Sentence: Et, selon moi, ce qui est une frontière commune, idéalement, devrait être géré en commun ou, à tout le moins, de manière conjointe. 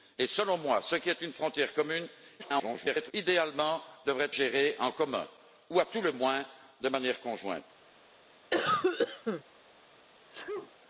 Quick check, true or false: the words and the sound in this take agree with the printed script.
false